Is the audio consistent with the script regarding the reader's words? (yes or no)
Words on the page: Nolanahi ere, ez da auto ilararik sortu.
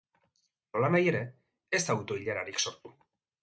yes